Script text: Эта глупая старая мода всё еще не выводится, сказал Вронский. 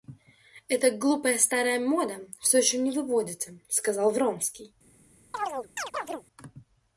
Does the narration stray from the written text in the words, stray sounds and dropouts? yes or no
yes